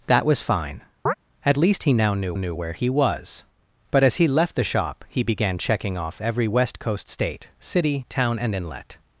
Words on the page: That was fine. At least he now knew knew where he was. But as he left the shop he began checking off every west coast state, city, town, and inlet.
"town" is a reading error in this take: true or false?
false